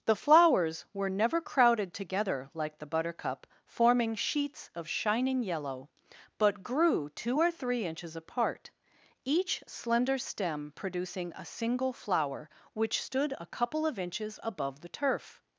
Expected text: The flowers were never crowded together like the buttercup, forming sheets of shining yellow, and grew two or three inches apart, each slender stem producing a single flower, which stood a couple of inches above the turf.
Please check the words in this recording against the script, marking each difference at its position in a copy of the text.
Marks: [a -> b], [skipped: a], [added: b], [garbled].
The flowers were never crowded together like the buttercup, forming sheets of shining yellow, [and -> but] grew two or three inches apart, each slender stem producing a single flower, which stood a couple of inches above the turf.